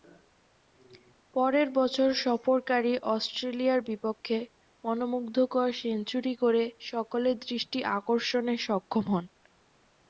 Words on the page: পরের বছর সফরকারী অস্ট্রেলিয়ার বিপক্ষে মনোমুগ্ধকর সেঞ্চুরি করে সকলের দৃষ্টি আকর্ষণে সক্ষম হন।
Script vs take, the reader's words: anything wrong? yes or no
no